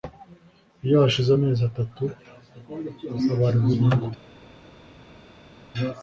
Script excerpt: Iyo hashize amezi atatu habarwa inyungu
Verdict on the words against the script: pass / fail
pass